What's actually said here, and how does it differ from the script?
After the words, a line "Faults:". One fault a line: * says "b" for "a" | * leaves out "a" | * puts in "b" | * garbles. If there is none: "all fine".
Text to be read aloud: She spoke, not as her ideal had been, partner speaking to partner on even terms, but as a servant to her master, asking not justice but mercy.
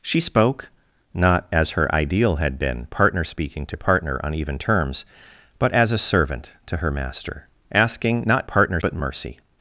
She spoke, not as her ideal had been, partner speaking to partner on even terms, but as a servant to her master, asking not partner but mercy.
Faults:
* says "partner" for "justice"